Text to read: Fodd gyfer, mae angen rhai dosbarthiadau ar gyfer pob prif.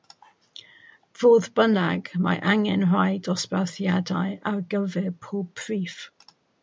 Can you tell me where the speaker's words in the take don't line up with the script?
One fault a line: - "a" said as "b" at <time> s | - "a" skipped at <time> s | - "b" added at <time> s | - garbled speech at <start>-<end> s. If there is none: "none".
- "gyfer" said as "bynnag" at 1.6 s